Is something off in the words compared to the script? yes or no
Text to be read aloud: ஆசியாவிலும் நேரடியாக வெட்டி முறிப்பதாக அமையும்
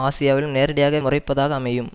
yes